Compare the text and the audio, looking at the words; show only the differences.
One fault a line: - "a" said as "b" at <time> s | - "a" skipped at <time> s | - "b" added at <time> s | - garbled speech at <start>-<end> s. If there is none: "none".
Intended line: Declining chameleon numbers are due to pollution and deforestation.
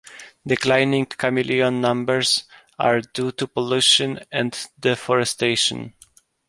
none